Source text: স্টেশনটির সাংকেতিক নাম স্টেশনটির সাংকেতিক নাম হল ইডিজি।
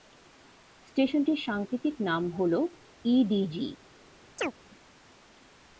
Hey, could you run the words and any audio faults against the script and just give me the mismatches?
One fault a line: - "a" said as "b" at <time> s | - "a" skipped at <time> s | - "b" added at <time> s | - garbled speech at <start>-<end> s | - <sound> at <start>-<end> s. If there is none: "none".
- "স্টেশনটির সাংকেতিক নাম" skipped at 2.2 s
- chirp at 4.4-4.5 s